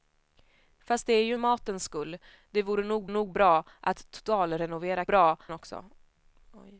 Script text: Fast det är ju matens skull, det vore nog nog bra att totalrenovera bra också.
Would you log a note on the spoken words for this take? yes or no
no